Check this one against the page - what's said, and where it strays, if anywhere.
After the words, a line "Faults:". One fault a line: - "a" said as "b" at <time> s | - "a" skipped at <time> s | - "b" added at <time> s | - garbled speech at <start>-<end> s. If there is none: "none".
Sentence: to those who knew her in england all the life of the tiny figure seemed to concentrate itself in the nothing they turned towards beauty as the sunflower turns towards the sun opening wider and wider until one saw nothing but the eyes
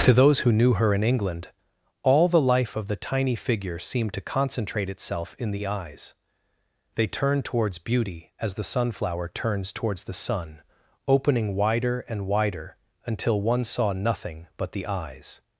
to those who knew her in england all the life of the tiny figure seemed to concentrate itself in the eyes they turned towards beauty as the sunflower turns towards the sun opening wider and wider until one saw nothing but the eyes
Faults:
- "nothing" said as "eyes" at 5.7 s